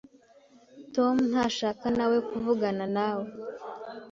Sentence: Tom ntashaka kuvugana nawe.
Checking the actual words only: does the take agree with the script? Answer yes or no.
no